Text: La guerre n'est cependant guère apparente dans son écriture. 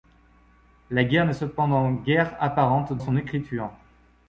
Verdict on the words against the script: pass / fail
fail